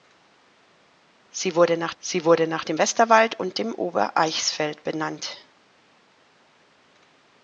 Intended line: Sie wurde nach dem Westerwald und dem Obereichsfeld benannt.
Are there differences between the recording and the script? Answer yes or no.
yes